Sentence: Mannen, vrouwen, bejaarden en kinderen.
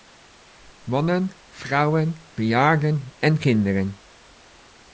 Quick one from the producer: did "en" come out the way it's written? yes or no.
yes